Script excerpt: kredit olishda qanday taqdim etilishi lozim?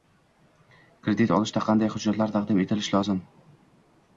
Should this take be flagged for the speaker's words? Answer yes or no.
yes